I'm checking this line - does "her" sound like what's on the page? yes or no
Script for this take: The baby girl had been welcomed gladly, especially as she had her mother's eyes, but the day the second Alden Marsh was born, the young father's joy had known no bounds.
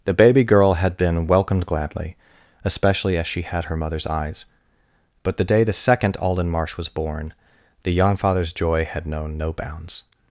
yes